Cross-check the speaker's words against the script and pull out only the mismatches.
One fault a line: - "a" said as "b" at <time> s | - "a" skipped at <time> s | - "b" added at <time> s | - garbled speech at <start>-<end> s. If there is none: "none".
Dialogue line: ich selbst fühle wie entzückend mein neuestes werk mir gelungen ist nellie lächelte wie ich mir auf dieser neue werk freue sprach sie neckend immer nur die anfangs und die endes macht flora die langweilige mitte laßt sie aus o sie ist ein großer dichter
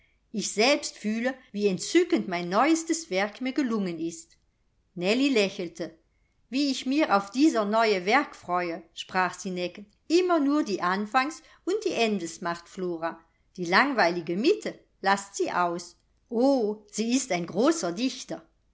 none